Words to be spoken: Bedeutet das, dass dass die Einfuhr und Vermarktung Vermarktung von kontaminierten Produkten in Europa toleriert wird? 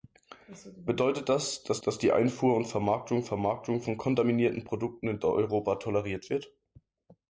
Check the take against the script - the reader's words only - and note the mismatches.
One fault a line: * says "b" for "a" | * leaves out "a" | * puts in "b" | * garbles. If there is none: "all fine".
all fine